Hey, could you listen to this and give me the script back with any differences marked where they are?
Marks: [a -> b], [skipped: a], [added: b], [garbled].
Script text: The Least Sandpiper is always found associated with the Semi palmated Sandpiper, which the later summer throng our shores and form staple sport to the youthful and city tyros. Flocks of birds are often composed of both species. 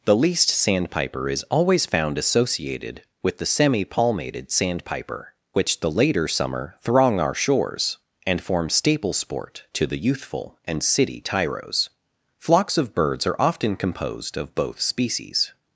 The Least Sandpiper is always found associated with the Semi palmated Sandpiper, which the later summer throng our shores and form staple sport to the youthful and city tyros. Flocks of birds are often composed of both species.